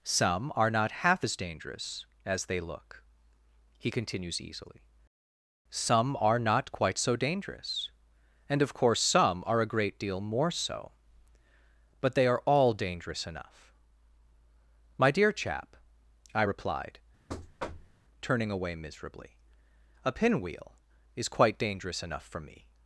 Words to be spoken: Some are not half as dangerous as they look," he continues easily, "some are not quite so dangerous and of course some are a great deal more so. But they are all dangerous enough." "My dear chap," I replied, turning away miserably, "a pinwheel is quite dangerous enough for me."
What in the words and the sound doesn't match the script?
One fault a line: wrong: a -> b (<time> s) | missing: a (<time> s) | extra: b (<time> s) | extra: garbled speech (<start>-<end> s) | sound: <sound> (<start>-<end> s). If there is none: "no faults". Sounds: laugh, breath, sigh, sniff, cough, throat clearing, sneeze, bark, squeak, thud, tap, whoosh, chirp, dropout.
sound: thud (17.3-18.0 s)